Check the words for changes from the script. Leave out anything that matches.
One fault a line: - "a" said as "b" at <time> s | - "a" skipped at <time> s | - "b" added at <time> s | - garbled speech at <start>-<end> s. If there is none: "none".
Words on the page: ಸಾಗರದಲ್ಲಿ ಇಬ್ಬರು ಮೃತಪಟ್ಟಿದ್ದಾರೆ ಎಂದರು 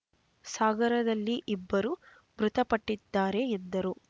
none